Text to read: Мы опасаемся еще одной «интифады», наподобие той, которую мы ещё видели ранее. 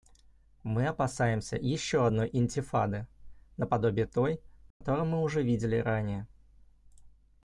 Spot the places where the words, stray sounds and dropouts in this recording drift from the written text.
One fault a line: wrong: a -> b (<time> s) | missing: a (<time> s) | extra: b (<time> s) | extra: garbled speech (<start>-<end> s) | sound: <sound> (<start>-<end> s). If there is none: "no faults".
sound: dropout (4.7-4.8 s)
wrong: ещё -> уже (5.2 s)